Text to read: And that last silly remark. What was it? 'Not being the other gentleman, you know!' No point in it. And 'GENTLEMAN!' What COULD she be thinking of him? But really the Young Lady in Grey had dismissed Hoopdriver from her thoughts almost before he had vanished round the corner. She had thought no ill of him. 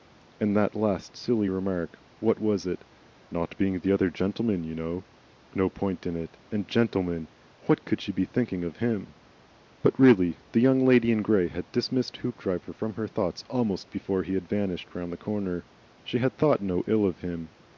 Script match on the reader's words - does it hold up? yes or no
yes